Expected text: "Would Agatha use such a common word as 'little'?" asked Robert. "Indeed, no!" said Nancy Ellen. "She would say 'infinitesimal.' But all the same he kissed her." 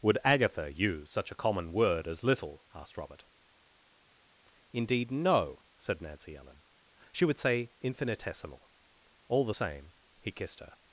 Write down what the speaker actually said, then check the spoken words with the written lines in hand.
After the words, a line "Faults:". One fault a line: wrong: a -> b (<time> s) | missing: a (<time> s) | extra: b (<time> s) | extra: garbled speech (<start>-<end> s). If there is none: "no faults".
"Would Agatha use such a common word as 'little'?" asked Robert. "Indeed, no!" said Nancy Ellen. "She would say 'infinitesimal.' all the same he kissed her."
Faults:
missing: But (8.7 s)